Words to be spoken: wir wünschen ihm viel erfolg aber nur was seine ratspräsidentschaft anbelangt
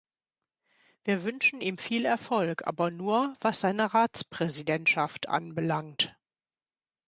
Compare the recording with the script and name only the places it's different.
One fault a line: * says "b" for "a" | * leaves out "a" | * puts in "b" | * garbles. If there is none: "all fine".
all fine